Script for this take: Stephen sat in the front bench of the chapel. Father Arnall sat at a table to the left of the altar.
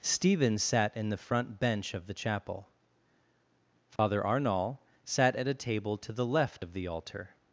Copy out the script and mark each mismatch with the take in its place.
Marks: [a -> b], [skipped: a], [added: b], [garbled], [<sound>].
Stephen sat in the front bench of the chapel. Father [dropout] Arnall sat at a table to the left of the altar.